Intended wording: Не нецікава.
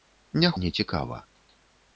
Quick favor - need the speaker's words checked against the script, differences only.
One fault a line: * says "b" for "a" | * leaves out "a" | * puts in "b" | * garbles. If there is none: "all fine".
all fine